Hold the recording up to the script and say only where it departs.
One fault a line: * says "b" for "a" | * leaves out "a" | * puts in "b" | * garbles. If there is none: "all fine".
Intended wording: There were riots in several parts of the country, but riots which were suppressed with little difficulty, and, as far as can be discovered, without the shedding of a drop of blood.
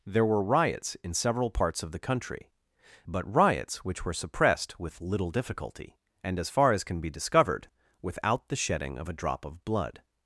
all fine